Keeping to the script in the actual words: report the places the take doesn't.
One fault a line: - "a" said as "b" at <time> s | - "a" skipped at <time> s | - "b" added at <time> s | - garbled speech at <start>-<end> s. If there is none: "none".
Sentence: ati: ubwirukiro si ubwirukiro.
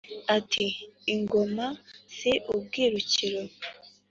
- "ubwirukiro" said as "ingoma" at 1.1 s